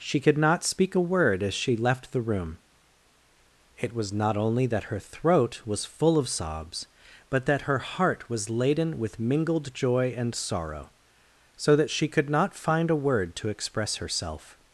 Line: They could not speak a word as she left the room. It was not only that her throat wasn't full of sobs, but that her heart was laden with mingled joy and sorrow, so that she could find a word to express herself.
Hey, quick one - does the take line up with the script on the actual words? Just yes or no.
no